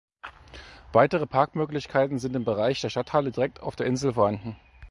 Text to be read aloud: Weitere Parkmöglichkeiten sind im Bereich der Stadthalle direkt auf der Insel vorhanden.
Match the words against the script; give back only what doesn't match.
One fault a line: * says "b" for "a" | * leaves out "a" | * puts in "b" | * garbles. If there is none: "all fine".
all fine